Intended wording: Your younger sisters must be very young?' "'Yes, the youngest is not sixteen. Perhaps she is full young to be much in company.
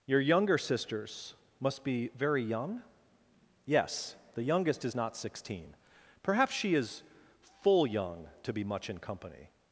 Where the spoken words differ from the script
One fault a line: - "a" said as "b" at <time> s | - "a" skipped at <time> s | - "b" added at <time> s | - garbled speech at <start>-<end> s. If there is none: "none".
none